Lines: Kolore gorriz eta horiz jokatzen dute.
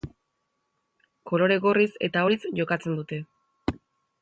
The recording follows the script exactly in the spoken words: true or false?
true